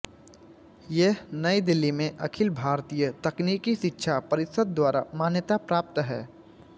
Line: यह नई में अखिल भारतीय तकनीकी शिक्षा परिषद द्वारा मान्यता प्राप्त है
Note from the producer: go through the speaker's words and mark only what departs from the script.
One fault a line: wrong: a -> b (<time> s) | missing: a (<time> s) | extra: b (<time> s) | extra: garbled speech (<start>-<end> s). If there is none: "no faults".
extra: दिल्ली (1.6 s)